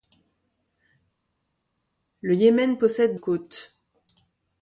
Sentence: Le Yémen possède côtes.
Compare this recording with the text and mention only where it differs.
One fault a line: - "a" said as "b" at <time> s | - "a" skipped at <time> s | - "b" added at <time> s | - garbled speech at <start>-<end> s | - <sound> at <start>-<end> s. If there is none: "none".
none